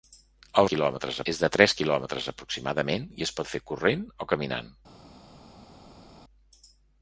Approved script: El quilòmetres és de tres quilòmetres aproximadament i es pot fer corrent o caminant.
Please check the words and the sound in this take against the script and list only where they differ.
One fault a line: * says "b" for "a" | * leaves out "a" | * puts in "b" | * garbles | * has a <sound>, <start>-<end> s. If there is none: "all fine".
all fine